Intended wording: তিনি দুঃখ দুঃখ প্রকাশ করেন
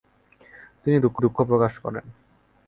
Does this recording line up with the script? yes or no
yes